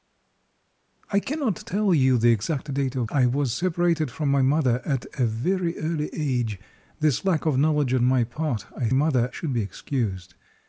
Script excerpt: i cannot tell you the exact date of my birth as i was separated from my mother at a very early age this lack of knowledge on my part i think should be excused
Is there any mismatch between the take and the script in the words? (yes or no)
yes